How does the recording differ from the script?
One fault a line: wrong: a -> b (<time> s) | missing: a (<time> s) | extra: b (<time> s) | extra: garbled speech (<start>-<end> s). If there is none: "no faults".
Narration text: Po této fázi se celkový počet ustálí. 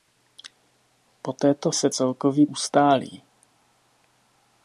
missing: fázi (1.7 s)
missing: počet (2.5 s)